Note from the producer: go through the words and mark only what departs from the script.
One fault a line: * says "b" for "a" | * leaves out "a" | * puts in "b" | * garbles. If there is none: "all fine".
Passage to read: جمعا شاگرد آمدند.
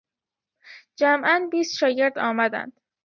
* puts in "بیست"